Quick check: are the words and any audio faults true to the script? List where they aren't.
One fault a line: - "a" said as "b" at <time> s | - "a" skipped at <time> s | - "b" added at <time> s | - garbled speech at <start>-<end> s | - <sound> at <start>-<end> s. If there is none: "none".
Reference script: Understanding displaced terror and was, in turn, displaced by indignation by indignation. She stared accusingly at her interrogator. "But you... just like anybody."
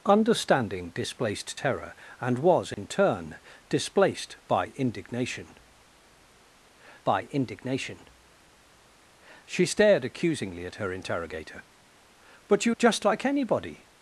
- dropout at 2.7-2.8 s